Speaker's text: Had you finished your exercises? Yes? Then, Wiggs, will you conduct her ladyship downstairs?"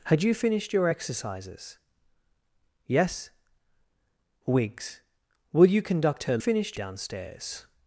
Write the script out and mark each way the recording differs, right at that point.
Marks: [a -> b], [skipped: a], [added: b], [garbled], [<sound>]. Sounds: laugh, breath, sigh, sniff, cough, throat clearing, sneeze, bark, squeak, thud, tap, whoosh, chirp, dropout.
Had you finished your exercises? Yes? [skipped: Then,] Wiggs, will you conduct her [ladyship -> finished] downstairs?"